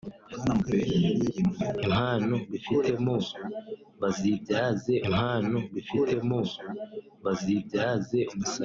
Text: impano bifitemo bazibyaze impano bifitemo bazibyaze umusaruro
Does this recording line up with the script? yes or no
yes